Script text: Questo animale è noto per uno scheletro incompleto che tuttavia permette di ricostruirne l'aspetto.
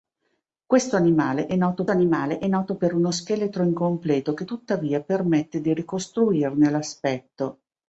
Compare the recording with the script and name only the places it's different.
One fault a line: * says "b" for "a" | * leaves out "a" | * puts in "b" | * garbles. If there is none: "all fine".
* puts in "animale è noto"